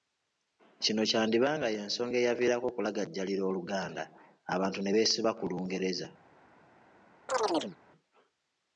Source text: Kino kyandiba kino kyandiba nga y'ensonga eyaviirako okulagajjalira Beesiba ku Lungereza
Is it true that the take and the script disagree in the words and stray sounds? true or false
true